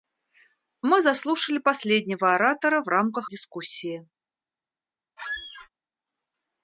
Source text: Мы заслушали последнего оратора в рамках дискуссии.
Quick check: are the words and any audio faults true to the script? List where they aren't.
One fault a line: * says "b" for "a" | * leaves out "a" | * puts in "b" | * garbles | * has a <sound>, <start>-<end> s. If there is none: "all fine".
* has a squeak, 5.2-5.7 s